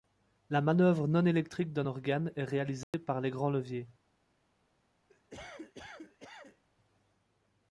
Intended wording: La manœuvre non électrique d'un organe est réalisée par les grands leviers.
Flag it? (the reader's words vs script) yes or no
no